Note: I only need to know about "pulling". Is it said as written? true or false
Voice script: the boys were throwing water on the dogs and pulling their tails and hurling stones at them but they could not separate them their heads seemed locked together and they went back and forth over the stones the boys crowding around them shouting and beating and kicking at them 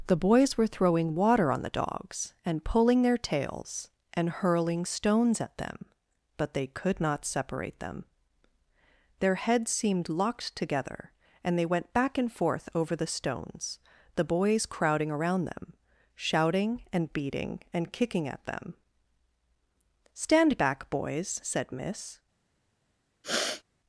true